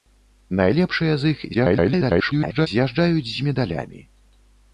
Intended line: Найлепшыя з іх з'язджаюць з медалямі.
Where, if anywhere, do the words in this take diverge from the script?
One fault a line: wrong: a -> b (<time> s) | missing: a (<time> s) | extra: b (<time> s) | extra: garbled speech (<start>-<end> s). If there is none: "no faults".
extra: garbled speech (1.5-2.7 s)